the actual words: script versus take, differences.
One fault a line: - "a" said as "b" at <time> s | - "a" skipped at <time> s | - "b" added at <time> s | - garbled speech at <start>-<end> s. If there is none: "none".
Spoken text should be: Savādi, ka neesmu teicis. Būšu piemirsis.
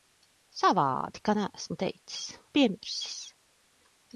- "Būšu" skipped at 2.2 s